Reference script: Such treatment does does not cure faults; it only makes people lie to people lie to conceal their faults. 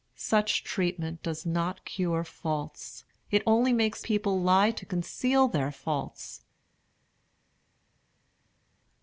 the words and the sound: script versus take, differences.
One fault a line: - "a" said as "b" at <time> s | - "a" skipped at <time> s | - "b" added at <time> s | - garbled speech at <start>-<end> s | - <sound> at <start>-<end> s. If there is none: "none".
- "does" skipped at 1.4 s
- "people lie to" skipped at 4.8 s